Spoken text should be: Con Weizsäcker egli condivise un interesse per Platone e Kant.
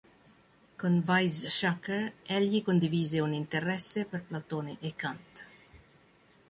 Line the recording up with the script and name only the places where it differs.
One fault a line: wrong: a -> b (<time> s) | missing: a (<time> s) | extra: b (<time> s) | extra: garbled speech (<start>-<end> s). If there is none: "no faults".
no faults